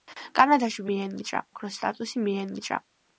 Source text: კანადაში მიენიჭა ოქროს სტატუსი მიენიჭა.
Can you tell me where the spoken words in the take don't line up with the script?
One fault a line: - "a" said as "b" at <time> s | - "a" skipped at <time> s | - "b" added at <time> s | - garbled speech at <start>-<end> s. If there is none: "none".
none